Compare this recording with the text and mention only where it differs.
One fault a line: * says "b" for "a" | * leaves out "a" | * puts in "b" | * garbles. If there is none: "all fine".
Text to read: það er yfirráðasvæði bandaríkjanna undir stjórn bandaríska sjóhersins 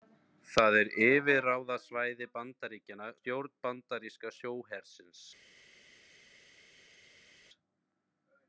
* leaves out "undir"